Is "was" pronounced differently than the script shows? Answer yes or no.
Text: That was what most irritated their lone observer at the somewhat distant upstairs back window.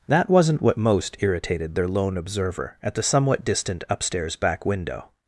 yes